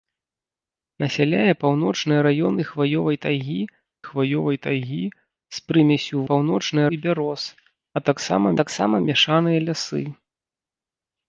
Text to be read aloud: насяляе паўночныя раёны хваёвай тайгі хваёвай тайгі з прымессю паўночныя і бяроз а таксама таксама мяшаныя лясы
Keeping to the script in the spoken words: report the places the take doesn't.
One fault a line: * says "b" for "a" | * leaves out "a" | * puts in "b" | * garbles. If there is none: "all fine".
all fine